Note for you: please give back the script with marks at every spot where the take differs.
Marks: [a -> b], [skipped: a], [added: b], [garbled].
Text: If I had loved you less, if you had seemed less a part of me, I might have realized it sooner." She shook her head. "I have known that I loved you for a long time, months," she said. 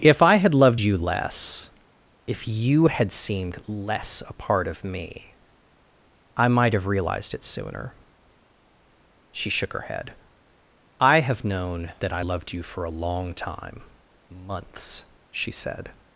If I had loved you less, if you had seemed less a part of me, I might have realized it sooner." She shook her head. "I have known that I loved you for a long time, months," she said.